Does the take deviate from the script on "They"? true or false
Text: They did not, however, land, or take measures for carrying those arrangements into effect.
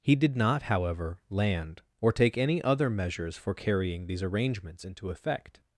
true